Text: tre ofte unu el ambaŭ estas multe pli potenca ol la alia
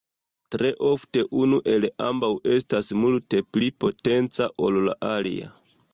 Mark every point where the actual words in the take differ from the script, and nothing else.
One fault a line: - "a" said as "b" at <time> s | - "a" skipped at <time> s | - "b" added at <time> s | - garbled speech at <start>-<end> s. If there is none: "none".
none